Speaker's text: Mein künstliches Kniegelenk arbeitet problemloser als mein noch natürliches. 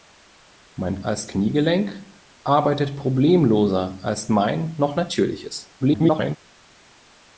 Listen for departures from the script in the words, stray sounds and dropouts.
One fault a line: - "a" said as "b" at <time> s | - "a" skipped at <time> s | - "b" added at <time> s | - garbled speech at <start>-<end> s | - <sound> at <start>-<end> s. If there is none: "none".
- "künstliches" said as "als" at 1.0 s
- garbled speech at 5.8-6.4 s